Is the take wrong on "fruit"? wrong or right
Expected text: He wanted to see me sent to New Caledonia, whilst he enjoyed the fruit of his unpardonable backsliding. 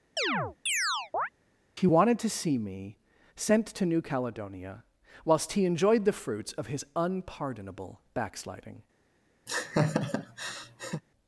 wrong